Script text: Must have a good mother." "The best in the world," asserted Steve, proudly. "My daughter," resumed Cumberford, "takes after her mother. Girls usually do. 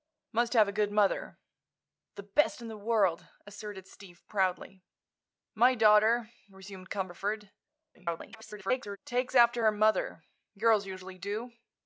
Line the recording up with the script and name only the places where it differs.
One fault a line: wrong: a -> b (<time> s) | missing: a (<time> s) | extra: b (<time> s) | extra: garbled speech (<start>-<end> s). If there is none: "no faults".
extra: garbled speech (7.9-9.0 s)